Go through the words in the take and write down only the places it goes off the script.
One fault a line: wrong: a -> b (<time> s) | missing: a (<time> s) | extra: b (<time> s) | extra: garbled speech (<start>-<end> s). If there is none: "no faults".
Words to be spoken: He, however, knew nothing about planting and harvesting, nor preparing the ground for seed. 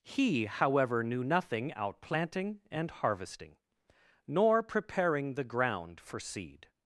wrong: about -> out (1.7 s)